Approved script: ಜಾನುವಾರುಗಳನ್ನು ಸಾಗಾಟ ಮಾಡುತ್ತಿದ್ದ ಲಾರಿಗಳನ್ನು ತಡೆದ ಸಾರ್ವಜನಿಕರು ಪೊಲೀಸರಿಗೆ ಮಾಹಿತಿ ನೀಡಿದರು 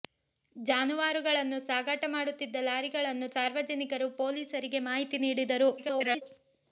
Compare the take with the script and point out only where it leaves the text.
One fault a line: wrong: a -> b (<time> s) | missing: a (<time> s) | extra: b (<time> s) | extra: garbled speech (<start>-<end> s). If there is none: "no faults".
missing: ತಡೆದ (3.3 s)
extra: garbled speech (5.8-6.2 s)